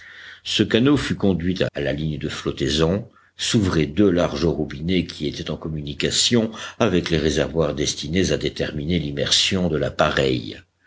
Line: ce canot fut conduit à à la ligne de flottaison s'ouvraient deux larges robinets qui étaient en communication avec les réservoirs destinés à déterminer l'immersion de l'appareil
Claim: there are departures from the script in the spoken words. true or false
false